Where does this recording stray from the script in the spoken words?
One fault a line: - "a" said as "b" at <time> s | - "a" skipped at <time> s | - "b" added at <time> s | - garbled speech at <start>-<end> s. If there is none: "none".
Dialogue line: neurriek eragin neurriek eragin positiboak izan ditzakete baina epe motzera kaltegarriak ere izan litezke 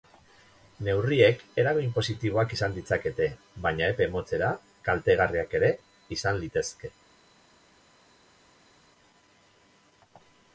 - "neurriek eragin" skipped at 1.9 s